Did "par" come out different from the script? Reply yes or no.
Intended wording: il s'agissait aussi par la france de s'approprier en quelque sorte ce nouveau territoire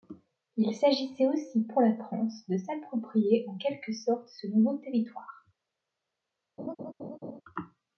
yes